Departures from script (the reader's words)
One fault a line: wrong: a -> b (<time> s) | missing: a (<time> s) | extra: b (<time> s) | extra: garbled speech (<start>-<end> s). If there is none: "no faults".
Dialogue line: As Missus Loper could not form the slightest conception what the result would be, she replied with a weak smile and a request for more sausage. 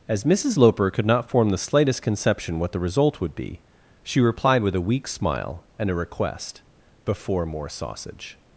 wrong: for -> before (7.0 s)